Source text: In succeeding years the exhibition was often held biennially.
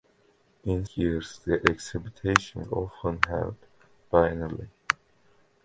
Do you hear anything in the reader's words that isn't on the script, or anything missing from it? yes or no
yes